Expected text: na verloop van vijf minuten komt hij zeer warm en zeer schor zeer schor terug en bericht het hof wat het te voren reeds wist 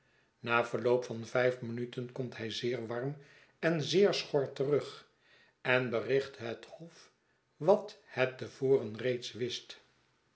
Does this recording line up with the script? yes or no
no